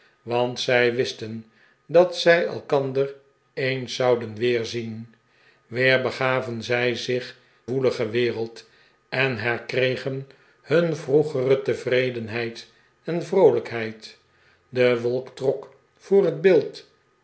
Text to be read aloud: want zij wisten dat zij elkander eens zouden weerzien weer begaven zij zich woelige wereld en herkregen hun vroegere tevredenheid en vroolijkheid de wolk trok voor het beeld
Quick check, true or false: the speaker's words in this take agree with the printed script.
true